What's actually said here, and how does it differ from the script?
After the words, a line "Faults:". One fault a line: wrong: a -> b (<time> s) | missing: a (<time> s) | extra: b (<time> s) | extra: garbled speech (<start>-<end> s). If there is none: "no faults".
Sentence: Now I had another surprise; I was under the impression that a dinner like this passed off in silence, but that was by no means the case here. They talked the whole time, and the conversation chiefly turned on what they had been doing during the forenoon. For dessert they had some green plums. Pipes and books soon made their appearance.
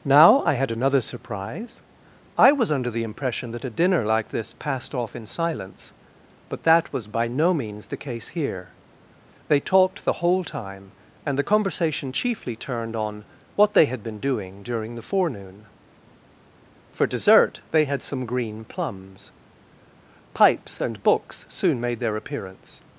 Now I had another surprise; I was under the impression that a dinner like this passed off in silence, but that was by no means the case here. They talked the whole time, and the conversation chiefly turned on what they had been doing during the forenoon. For dessert they had some green plums. Pipes and books soon made their appearance.
Faults:
no faults